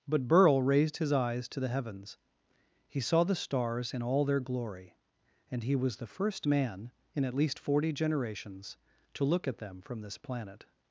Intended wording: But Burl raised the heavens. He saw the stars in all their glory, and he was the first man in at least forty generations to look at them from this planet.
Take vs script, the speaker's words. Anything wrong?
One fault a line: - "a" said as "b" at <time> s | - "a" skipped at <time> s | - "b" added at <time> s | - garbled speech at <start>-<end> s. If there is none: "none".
- "his eyes to" added at 1.0 s